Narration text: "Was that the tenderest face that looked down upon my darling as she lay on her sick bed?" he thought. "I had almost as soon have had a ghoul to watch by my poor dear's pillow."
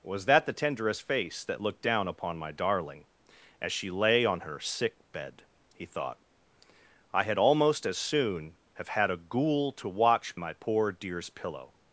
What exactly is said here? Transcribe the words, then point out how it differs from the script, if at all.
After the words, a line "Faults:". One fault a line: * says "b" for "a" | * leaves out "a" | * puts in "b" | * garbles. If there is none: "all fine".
"Was that the tenderest face that looked down upon my darling as she lay on her sick bed?" he thought. "I had almost as soon have had a ghoul to watch my poor dear's pillow."
Faults:
* leaves out "by"